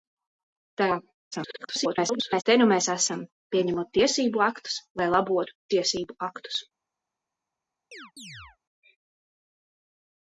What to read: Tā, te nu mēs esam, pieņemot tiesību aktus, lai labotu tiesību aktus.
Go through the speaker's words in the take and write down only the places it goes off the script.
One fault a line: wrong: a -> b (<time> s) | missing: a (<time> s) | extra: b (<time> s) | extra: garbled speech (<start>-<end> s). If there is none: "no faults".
extra: garbled speech (1.3-2.4 s)